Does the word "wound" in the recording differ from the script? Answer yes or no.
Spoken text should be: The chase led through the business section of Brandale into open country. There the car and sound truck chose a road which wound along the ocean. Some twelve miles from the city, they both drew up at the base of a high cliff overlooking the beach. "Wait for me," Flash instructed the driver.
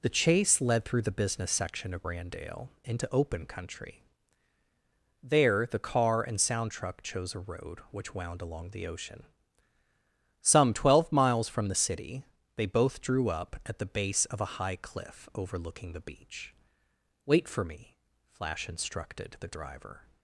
no